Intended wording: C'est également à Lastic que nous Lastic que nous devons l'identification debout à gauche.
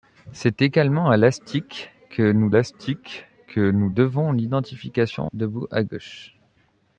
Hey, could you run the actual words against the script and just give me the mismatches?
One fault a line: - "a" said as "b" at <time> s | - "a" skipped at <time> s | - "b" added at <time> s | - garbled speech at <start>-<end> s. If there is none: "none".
none